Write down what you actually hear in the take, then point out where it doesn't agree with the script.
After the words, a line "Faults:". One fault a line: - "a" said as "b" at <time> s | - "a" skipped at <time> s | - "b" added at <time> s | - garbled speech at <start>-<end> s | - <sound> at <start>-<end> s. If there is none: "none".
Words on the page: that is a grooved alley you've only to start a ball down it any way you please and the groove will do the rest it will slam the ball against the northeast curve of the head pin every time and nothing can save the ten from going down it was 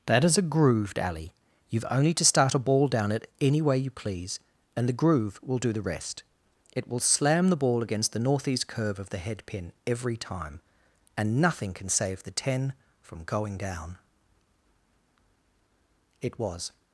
that is a grooved alley you've only to start a ball down it any way you please and the groove will do the rest it will slam the ball against the northeast curve of the head pin every time and nothing can save the ten from going down it was
Faults:
none